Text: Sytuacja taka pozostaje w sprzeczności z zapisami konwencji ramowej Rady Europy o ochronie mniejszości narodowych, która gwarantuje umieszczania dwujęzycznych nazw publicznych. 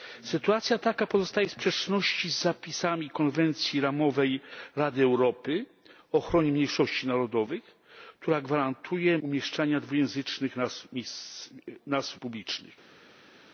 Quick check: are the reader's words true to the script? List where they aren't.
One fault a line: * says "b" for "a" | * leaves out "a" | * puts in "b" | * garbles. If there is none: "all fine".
all fine